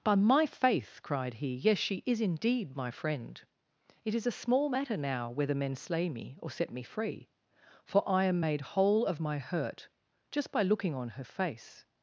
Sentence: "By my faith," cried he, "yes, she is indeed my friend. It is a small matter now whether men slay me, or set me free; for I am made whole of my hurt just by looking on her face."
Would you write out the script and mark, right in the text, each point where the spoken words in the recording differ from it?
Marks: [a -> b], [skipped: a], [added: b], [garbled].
"By my faith," cried he, "yes, she is indeed my friend. It is a small matter now whether men slay me, or set me free; for I am made whole of my hurt just by looking on her face."